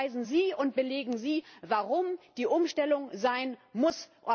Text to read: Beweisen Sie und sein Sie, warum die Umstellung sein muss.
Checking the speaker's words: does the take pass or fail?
fail